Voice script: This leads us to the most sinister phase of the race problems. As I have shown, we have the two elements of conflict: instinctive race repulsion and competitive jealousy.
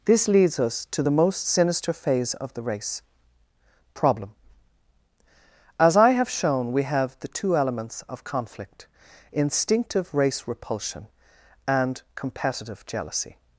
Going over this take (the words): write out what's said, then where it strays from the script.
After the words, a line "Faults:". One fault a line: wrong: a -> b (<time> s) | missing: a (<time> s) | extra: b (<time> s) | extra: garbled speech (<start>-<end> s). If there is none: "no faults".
This leads us to the most sinister phase of the race problem. As I have shown, we have the two elements of conflict: instinctive race repulsion and competitive jealousy.
Faults:
wrong: problems -> problem (3.9 s)